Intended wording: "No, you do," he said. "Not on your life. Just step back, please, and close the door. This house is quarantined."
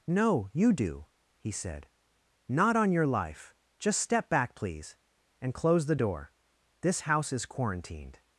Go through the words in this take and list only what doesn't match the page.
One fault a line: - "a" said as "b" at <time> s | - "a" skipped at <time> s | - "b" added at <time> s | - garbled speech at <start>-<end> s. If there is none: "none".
none